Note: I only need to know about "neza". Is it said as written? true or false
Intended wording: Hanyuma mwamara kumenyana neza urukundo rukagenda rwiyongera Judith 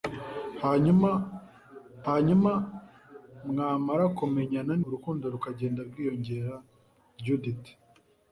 false